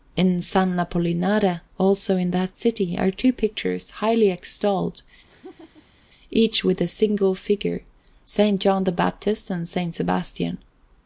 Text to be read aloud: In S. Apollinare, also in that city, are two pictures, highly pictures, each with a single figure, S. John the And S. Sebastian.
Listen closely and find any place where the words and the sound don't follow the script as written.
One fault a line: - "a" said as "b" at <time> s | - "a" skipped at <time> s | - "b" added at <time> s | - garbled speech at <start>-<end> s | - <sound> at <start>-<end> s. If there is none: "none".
- "pictures" said as "extolled" at 4.3 s
- laugh at 5.3-6.1 s
- "Baptist" added at 8.9 s